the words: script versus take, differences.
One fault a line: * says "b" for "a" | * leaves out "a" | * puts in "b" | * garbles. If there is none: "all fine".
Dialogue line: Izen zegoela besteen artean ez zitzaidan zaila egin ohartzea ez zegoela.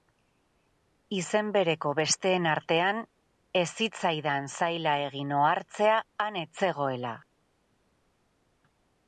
* says "bereko" for "zegoela"
* puts in "han"